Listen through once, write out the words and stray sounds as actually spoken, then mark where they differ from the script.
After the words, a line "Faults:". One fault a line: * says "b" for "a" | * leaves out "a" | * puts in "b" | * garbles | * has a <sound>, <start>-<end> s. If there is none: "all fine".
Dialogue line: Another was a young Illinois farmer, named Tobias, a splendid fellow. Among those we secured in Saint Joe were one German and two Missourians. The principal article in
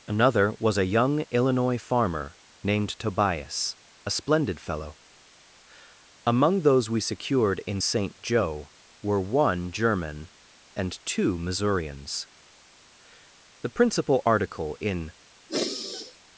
Another was a young Illinois farmer, named Tobias, a splendid fellow. Among those we secured in Saint Joe were one German and two Missourians. The principal article in
Faults:
* has a sigh, 15.5-16.2 s